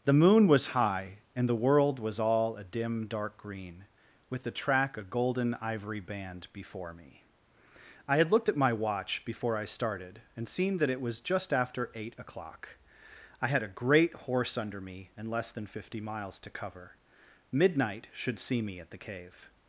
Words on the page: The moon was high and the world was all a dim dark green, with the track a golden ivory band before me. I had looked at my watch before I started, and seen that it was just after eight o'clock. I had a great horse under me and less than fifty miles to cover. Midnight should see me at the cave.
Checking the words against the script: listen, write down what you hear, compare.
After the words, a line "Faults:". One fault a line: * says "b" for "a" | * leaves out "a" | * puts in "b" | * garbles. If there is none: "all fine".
The moon was high and the world was all a dim dark green, with the track a golden ivory band before me. I had looked at my watch before I started, and seen that it was just after eight o'clock. I had a great horse under me and less than fifty miles to cover. Midnight should see me at the cave.
Faults:
all fine